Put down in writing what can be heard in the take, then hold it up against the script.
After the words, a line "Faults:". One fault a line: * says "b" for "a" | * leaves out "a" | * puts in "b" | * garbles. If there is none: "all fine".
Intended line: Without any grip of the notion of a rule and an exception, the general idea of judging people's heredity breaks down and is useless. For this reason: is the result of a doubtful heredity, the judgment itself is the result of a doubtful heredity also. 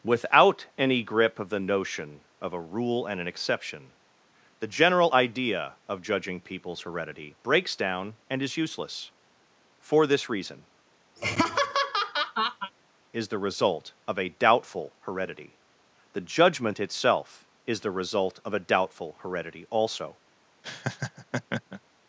Without any grip of the notion of a rule and an exception, the general idea of judging people's heredity breaks down and is useless. For this reason: is the result of a doubtful heredity, the judgment itself is the result of a doubtful heredity also.
Faults:
all fine